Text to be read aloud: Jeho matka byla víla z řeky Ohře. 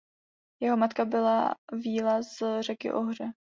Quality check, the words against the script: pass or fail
pass